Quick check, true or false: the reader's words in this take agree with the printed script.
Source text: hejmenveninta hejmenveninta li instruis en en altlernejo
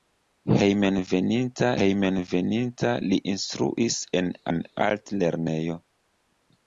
true